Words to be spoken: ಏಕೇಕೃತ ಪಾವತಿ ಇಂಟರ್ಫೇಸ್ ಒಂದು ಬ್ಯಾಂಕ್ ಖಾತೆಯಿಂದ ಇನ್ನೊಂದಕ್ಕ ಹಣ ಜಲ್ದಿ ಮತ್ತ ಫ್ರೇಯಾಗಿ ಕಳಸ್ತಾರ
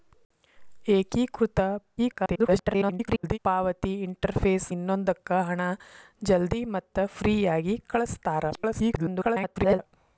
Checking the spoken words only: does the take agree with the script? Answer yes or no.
no